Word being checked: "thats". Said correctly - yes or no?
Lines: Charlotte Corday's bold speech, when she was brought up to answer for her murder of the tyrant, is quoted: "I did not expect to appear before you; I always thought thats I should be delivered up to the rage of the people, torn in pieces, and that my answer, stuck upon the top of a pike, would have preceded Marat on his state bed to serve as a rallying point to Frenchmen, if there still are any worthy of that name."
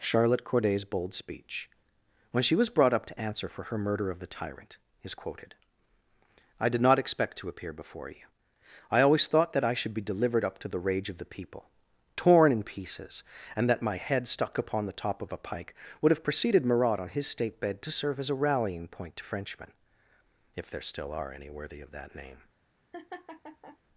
no